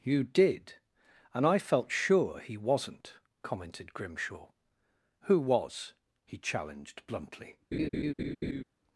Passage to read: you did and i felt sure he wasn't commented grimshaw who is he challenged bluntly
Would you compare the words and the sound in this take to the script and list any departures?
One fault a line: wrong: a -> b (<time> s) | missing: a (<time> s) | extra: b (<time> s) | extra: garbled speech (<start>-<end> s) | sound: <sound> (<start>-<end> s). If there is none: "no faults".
wrong: is -> was (5.4 s)
sound: laugh (7.7-8.6 s)